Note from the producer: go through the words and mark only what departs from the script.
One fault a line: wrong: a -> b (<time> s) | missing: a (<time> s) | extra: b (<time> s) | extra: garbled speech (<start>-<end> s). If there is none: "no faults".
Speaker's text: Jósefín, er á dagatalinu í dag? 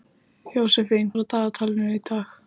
no faults